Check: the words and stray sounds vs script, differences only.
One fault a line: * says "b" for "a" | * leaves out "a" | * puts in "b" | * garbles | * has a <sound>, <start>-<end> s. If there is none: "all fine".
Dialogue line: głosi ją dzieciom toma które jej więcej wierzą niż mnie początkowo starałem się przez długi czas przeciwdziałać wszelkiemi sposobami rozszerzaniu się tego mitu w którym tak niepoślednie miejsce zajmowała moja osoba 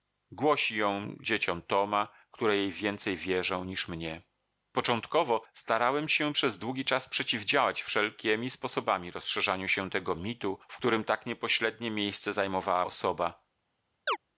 * leaves out "moja"
* has a chirp, 14.1-14.2 s